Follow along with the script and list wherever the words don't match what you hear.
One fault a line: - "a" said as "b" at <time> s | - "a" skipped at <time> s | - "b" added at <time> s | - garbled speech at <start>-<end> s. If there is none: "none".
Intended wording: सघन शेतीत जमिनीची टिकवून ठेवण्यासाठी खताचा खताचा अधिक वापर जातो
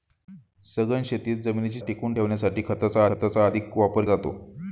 none